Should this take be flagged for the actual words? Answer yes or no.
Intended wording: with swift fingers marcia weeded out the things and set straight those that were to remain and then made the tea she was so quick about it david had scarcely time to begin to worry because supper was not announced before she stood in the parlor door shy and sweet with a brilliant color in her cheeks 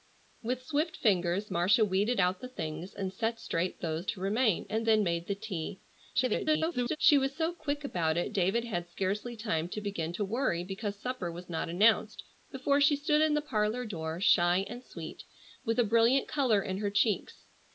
yes